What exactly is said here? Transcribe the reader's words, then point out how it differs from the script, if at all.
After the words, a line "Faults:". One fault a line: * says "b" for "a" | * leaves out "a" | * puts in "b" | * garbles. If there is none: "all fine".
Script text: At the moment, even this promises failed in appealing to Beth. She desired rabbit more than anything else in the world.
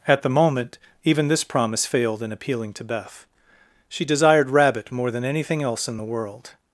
At the moment, even this promise failed in appealing to Beth. She desired rabbit more than anything else in the world.
Faults:
* says "promise" for "promises"